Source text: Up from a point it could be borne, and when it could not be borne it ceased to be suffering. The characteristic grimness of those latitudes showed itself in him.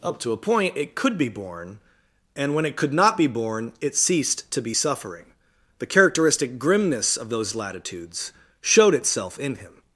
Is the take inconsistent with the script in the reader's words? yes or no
yes